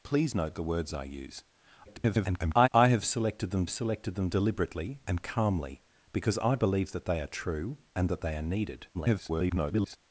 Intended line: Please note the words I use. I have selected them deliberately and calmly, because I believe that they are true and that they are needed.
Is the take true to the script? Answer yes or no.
no